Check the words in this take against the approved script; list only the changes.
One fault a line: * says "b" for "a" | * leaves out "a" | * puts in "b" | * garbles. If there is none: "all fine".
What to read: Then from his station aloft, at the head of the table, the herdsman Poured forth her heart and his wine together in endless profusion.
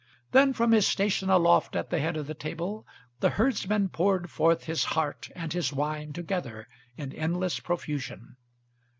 * says "his" for "her"